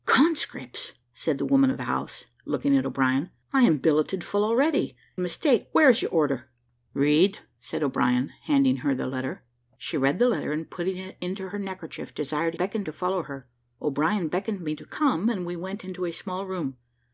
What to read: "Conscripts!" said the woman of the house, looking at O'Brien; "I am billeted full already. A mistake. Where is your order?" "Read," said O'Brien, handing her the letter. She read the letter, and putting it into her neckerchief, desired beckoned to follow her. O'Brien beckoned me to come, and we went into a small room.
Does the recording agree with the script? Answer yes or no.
yes